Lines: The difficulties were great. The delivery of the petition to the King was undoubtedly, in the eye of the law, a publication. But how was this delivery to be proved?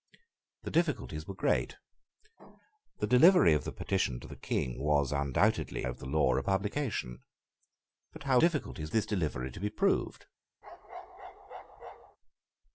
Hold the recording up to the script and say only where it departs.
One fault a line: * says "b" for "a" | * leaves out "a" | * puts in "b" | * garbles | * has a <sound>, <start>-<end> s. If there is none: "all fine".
* leaves out "in the eye"
* says "difficulties" for "was"
* has a bark, 10.6-12.2 s